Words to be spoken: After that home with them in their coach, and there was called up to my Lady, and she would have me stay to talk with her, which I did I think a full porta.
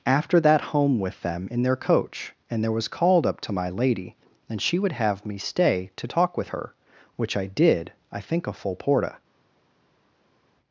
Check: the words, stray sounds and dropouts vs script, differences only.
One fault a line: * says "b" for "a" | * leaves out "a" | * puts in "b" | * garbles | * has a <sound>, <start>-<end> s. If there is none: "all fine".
all fine